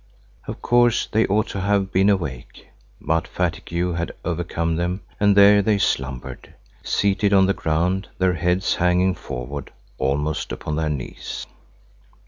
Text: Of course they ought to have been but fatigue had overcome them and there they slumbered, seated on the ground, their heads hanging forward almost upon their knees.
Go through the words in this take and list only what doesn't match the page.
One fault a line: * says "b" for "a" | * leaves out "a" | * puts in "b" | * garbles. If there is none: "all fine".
* puts in "awake"